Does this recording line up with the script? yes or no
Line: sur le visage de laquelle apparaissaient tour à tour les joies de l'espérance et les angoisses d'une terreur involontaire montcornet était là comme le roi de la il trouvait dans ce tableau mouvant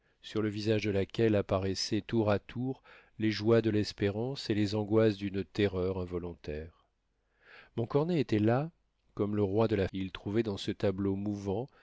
yes